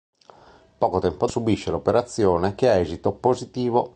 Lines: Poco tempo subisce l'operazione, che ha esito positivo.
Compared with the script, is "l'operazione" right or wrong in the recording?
right